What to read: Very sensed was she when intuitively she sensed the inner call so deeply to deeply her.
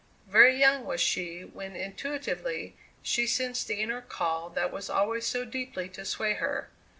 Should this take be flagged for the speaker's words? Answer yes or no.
yes